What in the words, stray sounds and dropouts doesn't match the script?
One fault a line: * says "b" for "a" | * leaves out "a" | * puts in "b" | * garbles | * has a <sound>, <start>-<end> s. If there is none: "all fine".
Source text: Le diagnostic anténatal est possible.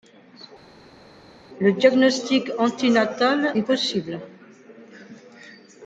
all fine